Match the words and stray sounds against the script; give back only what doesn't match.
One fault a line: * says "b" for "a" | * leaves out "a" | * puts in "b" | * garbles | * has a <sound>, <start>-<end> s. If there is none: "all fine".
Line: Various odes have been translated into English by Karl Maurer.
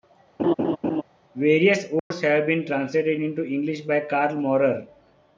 * has a laugh, 0.4-1.0 s
* has a dropout, 2.0-2.1 s